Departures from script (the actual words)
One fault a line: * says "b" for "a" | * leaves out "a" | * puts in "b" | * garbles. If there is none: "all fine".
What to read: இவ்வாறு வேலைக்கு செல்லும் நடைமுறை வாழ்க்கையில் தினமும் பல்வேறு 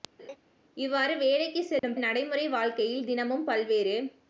all fine